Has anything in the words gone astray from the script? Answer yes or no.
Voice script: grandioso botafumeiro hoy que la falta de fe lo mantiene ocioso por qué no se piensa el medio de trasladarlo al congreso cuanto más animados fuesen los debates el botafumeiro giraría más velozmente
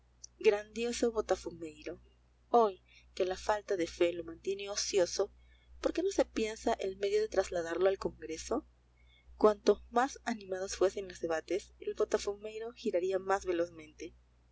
no